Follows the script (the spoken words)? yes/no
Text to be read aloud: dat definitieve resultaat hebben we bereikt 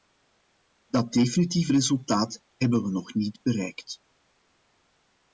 no